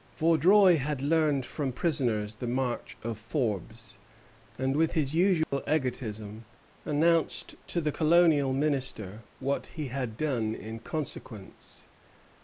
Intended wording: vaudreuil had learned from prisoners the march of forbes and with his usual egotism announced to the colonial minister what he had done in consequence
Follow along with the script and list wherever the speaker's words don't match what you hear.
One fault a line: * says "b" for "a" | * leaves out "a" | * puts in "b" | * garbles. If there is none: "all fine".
all fine